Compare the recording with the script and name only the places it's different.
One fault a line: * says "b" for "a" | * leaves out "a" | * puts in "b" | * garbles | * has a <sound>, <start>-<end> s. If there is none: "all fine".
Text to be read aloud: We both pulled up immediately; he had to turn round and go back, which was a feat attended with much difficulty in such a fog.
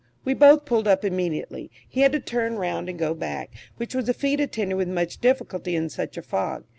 all fine